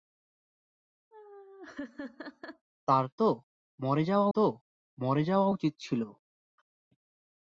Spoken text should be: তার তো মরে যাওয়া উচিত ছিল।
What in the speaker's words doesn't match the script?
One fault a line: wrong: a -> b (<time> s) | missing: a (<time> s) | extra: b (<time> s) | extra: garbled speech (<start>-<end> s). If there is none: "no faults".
extra: তো মরে যাওয়া (4.3 s)